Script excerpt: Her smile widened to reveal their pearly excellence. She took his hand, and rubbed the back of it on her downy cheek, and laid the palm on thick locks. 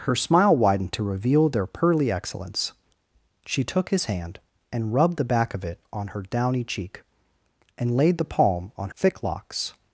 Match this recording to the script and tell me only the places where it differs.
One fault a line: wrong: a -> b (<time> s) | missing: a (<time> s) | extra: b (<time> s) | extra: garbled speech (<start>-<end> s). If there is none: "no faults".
no faults